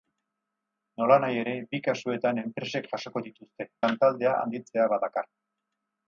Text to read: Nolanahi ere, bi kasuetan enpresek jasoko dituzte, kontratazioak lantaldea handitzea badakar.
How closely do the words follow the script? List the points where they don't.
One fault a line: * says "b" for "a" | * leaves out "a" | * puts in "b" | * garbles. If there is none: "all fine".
* leaves out "kontratazioak"